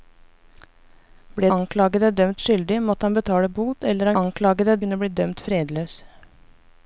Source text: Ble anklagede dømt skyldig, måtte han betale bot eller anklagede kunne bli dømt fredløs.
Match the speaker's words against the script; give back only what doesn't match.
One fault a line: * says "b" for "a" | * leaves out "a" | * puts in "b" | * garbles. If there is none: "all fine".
all fine